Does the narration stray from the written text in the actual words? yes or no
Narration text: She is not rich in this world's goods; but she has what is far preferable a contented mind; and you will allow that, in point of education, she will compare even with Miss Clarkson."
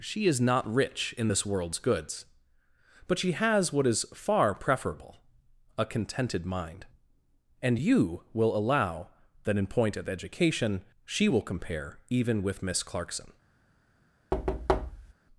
no